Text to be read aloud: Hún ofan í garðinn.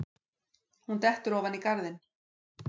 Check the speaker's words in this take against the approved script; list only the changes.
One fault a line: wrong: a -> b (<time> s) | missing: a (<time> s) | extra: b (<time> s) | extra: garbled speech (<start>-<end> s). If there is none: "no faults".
extra: dettur (1.1 s)